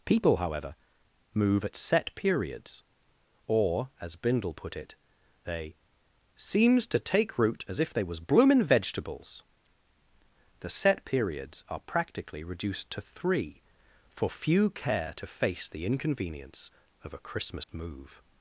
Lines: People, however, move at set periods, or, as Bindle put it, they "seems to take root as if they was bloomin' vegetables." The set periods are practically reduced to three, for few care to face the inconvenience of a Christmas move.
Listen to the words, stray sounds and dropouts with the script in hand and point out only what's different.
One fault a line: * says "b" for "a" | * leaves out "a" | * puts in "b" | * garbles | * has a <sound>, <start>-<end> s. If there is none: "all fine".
* has a dropout, 17.6-17.7 s